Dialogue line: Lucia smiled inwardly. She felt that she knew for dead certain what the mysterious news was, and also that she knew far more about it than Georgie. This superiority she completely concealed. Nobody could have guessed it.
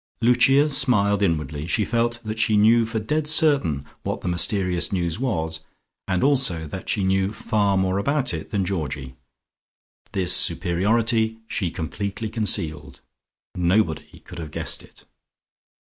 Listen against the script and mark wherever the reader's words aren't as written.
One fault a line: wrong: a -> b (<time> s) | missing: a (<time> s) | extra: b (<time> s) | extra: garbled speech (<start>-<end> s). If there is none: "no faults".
no faults